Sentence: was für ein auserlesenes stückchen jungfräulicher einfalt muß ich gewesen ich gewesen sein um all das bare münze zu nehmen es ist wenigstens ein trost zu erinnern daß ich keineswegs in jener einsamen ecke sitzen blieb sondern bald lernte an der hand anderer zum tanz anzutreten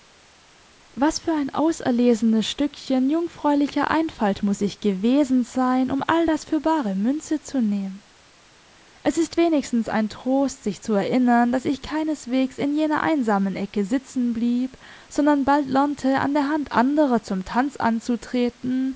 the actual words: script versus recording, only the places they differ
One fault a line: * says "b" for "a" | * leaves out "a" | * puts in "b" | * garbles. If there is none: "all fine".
* leaves out "ich gewesen"
* puts in "für"
* puts in "sich"